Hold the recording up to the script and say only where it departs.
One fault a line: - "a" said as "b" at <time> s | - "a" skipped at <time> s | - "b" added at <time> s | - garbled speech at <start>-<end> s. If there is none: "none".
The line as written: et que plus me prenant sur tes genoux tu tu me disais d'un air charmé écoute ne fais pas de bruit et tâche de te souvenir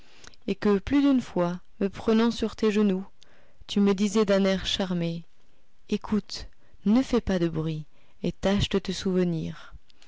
- "d'une fois" added at 1.0 s
- "tu" skipped at 3.8 s